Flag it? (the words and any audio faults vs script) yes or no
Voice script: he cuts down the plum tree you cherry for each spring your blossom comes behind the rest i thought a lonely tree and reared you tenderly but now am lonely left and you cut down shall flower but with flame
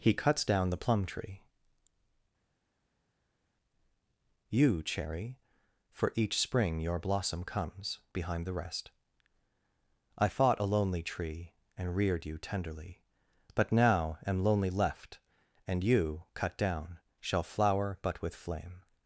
yes